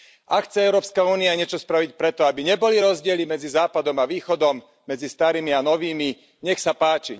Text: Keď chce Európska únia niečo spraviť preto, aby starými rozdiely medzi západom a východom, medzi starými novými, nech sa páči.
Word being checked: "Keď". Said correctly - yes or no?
no